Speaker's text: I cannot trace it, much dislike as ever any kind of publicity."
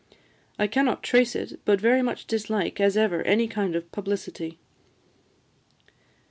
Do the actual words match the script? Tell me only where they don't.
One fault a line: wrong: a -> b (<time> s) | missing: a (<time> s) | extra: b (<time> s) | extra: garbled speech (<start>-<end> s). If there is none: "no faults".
extra: but very (1.6 s)